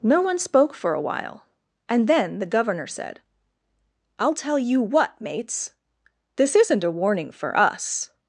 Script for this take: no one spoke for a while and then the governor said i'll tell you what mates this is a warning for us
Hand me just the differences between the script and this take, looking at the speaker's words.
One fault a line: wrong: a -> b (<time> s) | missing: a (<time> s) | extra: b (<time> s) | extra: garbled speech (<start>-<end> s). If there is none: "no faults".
wrong: is -> isn't (6.6 s)